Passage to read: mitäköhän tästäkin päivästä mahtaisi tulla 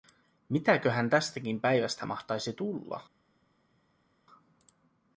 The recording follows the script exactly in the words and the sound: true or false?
true